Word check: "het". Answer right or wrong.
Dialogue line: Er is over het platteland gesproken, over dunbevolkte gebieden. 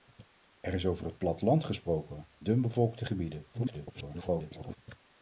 right